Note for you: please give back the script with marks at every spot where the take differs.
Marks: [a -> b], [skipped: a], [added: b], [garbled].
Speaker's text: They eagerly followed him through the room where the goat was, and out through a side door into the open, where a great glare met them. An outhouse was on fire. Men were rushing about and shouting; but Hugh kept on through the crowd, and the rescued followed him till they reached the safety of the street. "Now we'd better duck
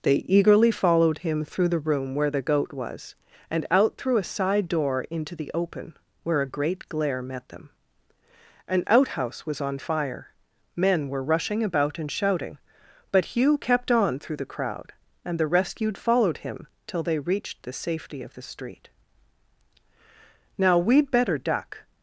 They eagerly followed him through the room where the goat was, and out through a side door into the open, where a great glare met them. An outhouse was on fire. Men were rushing about and shouting; but Hugh kept on through the crowd, and the rescued followed him till they reached the safety of the street. "Now we'd better duck